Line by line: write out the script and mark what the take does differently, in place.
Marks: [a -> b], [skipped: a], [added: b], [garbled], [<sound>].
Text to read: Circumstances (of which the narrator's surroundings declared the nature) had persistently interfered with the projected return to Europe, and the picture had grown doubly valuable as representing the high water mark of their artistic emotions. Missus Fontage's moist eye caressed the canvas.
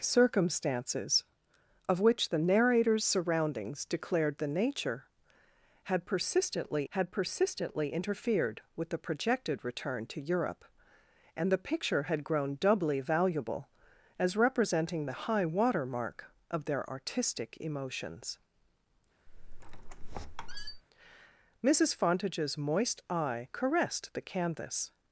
Circumstances (of which the narrator's surroundings declared the nature) had persistently [added: had persistently] interfered with the projected return to Europe, and the picture had grown doubly valuable as representing the high water mark of their artistic emotions. [squeak] Missus Fontage's moist eye caressed the canvas.